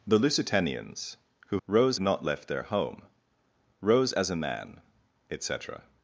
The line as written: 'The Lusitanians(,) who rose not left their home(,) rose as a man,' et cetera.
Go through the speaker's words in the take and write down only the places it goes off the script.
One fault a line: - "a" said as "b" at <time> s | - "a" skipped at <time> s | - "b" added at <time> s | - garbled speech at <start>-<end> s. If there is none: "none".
none